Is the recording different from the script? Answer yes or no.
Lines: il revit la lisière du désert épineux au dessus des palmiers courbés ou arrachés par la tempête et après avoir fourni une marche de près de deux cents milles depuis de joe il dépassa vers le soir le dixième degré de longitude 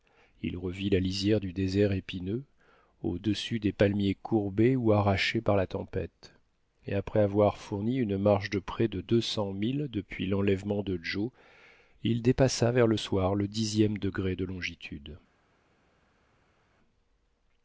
yes